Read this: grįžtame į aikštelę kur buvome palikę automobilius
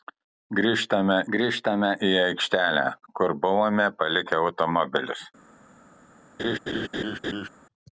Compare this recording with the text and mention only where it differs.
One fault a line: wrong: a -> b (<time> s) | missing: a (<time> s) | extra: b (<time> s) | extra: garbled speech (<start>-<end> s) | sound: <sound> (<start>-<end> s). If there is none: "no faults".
extra: grįžtame (1.3 s)
sound: laugh (6.4-7.5 s)